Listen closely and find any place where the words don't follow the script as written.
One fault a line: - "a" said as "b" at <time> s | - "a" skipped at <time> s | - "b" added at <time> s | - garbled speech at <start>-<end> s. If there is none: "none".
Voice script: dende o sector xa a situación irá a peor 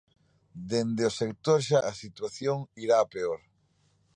none